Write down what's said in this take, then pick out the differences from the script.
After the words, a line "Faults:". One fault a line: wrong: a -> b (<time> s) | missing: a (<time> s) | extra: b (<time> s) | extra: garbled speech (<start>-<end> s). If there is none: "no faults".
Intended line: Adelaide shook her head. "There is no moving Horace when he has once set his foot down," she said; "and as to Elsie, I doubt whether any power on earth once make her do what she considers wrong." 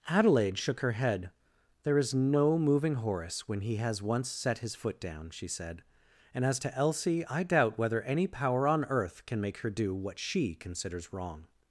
Adelaide shook her head. "There is no moving Horace when he has once set his foot down," she said; "and as to Elsie, I doubt whether any power on earth can make her do what she considers wrong."
Faults:
wrong: once -> can (9.2 s)